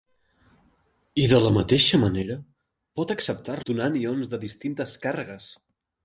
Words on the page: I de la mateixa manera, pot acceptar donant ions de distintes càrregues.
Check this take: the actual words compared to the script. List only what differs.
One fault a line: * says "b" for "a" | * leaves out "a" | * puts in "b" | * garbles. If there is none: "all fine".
all fine